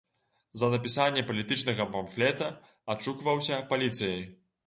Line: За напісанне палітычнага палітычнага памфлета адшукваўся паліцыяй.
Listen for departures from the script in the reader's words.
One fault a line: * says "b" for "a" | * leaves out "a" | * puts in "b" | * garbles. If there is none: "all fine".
* leaves out "палітычнага"